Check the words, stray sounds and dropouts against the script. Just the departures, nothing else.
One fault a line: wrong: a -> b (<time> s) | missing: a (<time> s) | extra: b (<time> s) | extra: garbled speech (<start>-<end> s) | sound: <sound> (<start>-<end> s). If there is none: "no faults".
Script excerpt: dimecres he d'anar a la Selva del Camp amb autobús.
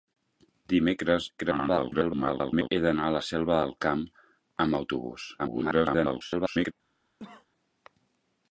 extra: garbled speech (1.4-2.7 s)
extra: garbled speech (5.4-6.7 s)
sound: cough (7.2-7.5 s)